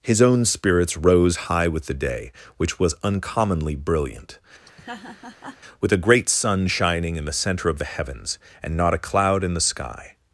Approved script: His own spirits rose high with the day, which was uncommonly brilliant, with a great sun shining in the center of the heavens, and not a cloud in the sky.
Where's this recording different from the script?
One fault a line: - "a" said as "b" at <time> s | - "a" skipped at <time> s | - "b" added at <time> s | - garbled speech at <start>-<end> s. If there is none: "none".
none